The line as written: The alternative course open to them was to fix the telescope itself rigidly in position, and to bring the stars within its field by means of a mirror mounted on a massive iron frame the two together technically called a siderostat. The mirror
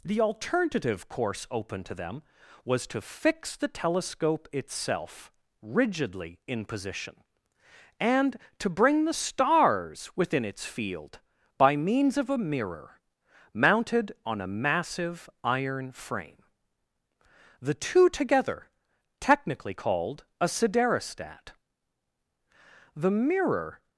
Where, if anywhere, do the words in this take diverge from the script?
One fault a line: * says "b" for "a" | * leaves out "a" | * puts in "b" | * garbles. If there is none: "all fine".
all fine